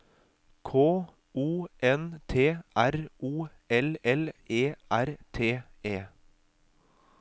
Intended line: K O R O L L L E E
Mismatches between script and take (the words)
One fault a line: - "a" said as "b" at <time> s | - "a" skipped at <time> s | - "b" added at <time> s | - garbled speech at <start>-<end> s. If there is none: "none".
- "N T" added at 1.8 s
- "L E" said as "E R T" at 4.5 s